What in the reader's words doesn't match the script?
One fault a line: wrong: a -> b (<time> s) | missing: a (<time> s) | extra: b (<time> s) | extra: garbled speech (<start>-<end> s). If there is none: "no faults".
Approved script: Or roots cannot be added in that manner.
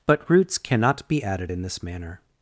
wrong: Or -> But (0.1 s)
wrong: that -> this (1.6 s)